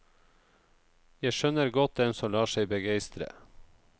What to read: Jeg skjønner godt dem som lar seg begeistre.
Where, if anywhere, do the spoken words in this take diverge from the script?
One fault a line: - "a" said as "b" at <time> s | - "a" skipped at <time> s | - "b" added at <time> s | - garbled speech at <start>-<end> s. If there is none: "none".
none